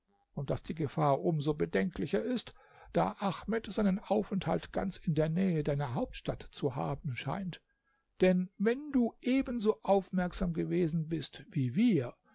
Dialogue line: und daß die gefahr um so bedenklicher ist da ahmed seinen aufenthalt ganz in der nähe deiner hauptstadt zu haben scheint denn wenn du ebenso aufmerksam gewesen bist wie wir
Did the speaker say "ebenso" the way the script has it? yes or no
yes